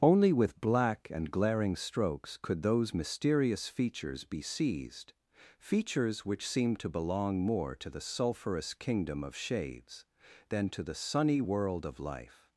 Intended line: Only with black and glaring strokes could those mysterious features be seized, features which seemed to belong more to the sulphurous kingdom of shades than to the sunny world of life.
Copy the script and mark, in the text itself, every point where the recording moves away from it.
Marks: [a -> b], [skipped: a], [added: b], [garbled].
Only with black and glaring strokes could those mysterious features be seized, features which seemed to belong more to the sulphurous kingdom of shades than to the sunny world of life.